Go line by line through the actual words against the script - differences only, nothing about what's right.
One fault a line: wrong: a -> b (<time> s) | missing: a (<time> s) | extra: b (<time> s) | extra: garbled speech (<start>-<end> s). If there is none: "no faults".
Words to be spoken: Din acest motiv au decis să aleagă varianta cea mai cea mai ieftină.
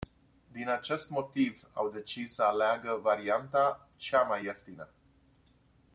missing: cea mai (4.5 s)